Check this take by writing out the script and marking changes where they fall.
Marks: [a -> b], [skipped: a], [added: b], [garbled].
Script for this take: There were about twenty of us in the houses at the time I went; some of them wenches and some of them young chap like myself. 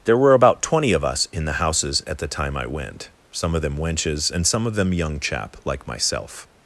There were about twenty of us in the houses at the time I went; some of them wenches and some of them young chap like myself.